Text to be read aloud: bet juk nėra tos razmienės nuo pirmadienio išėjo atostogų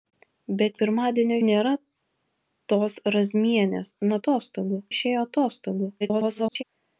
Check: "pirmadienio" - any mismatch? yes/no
yes